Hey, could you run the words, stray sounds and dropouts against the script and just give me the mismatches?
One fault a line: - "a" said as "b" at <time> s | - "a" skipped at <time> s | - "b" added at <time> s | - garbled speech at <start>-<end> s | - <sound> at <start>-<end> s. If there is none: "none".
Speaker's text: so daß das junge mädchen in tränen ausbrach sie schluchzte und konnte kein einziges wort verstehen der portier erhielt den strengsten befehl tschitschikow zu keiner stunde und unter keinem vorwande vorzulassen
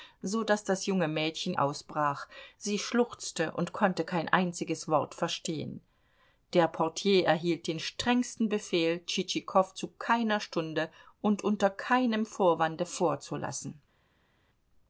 - "in tränen" skipped at 1.5 s